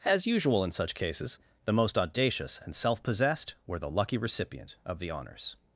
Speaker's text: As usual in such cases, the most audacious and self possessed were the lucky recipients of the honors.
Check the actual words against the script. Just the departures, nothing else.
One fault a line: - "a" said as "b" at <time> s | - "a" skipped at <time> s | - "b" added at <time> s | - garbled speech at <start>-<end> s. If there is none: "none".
- "recipients" said as "recipient" at 4.2 s